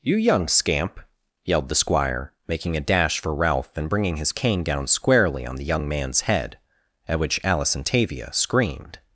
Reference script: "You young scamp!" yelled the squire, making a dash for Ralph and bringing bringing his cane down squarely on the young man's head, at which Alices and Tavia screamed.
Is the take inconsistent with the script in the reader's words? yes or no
yes